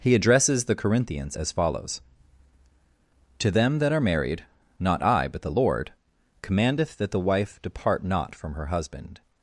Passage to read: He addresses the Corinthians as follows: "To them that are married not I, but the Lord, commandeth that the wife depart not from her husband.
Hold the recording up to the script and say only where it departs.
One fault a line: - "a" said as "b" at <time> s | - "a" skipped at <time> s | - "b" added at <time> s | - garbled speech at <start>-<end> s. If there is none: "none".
none